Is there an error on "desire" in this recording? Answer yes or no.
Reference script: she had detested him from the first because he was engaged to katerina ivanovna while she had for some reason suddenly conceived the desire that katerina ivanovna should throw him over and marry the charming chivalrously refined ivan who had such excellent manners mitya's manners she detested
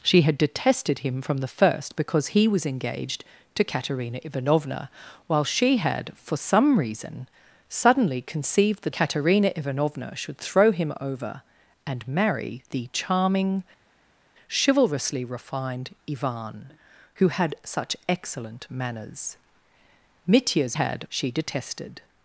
yes